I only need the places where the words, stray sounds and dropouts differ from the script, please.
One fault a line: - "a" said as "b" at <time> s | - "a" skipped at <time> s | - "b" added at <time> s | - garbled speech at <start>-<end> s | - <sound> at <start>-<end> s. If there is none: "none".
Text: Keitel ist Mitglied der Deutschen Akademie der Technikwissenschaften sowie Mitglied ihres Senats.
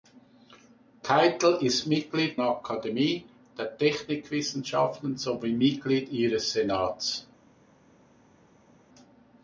- "der Deutschen" skipped at 2.4 s